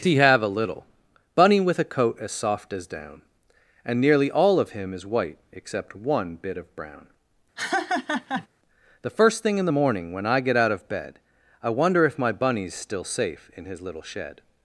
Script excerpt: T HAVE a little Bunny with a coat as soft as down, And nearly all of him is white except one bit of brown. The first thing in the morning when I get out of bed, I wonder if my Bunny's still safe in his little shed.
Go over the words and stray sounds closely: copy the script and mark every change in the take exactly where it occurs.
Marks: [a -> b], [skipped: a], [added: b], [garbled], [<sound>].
[T -> He] HAVE a little Bunny with a coat as soft as down, And nearly all of him is white except one bit of brown. [laugh] The first thing in the morning when I get out of bed, I wonder if my Bunny's still safe in his little shed.